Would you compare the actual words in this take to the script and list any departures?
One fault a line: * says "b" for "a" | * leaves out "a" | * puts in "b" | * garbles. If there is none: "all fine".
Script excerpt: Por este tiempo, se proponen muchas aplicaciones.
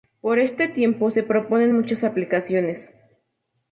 all fine